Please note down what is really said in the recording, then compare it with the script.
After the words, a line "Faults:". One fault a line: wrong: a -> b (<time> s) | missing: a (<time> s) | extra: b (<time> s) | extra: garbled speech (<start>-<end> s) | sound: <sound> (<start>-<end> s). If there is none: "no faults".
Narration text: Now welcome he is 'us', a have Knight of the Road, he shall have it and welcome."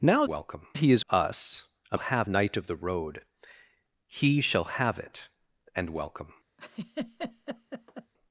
Now welcome he is 'us', a have Knight of the Road, he shall have it and welcome."
Faults:
sound: laugh (6.6-8.1 s)